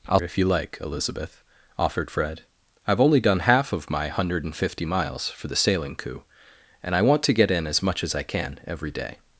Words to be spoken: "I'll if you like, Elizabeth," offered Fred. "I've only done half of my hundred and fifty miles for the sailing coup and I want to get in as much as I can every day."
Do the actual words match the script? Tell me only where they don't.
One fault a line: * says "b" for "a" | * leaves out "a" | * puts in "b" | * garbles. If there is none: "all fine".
all fine